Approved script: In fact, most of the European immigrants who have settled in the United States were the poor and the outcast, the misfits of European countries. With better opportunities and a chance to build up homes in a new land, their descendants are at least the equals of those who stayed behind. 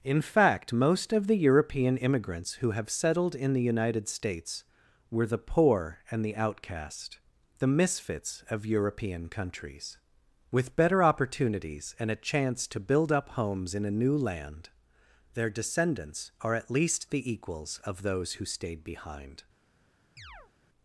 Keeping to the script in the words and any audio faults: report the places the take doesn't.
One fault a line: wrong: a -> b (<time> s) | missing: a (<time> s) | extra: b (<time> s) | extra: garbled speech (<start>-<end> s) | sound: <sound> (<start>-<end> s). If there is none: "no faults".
sound: chirp (20.2-20.5 s)